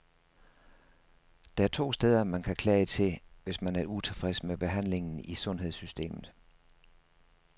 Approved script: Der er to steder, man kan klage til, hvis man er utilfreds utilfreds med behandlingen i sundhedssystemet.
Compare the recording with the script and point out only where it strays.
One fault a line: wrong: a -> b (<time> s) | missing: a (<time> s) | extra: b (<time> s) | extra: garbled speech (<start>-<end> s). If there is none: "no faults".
missing: utilfreds (4.4 s)